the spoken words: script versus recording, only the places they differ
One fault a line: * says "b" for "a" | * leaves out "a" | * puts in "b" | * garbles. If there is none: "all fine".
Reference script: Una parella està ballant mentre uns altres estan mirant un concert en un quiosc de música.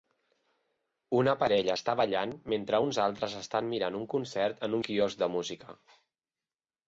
all fine